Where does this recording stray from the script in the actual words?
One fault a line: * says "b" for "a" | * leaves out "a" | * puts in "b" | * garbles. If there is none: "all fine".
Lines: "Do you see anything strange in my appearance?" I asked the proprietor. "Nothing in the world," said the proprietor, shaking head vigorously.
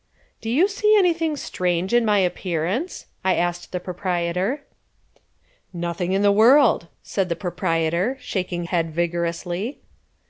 all fine